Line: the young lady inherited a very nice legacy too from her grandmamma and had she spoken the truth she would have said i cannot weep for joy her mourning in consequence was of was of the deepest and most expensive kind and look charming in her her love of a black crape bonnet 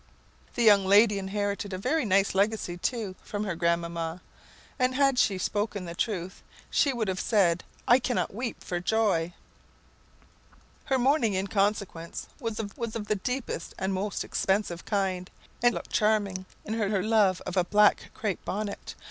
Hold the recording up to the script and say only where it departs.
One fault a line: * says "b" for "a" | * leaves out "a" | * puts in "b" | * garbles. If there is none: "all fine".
all fine